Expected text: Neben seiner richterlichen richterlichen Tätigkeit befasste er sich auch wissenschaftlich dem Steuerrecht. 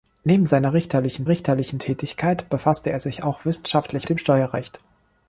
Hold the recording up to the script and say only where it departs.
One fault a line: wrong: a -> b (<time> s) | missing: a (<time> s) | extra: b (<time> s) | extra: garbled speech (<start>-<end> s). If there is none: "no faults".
no faults